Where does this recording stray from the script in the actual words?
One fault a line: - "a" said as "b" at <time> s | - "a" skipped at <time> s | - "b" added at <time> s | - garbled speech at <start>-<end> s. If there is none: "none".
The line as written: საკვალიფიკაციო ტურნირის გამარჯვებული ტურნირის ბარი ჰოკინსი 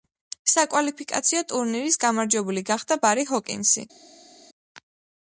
- "ტურნირის" said as "გახდა" at 2.7 s